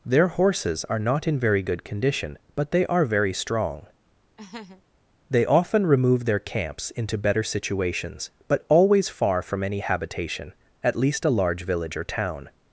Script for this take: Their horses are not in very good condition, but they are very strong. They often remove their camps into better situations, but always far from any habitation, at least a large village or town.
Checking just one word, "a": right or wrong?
right